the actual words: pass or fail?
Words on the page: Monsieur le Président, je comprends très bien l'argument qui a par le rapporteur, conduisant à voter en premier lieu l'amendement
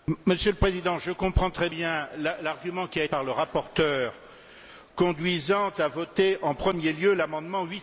pass